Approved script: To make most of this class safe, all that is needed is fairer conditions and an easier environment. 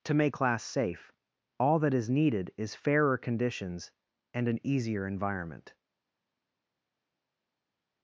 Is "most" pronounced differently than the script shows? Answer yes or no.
yes